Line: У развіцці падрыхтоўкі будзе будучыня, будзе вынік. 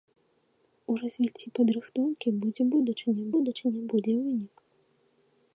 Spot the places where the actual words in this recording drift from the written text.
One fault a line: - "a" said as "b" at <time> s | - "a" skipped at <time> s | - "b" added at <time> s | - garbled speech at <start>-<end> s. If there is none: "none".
- "будучыня" added at 3.4 s